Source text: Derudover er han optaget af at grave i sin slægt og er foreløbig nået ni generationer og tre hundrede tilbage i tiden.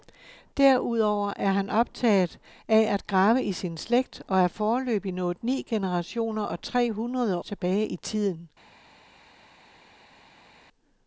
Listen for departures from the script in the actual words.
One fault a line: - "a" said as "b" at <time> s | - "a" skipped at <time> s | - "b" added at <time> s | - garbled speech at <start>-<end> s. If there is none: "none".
none